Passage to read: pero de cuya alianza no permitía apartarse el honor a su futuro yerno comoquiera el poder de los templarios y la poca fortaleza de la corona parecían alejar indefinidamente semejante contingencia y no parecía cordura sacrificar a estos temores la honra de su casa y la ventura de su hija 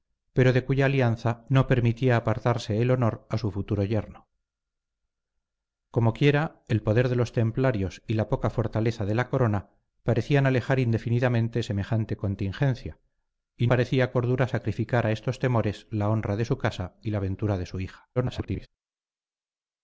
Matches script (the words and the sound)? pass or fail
fail